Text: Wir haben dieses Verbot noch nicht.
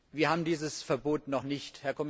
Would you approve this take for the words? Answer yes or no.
yes